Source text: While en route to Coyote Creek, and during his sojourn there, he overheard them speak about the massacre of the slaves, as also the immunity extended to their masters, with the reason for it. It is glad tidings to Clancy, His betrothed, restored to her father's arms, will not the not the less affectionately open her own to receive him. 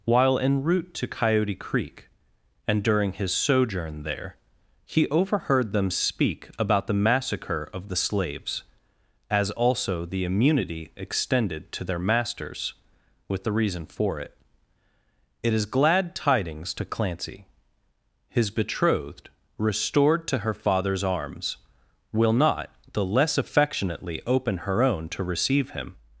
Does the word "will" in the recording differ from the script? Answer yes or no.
no